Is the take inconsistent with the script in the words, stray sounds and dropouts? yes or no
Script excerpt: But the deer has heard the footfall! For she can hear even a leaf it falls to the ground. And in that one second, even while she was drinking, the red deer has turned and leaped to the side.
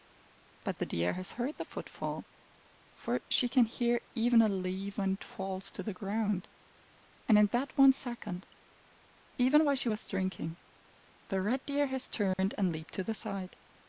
yes